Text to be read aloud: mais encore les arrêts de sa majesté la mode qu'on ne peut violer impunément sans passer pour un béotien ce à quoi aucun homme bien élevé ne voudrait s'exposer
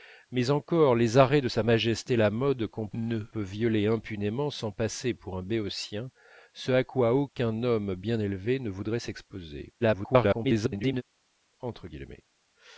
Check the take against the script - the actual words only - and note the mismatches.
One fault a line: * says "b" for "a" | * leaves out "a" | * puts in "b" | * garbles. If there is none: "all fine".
* garbles